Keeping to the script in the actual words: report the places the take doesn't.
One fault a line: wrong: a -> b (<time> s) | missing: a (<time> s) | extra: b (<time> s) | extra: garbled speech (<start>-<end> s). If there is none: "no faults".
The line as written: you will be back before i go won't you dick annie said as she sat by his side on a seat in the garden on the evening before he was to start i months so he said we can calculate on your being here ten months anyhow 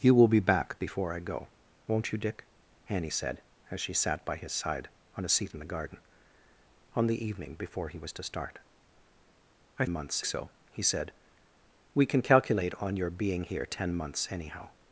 no faults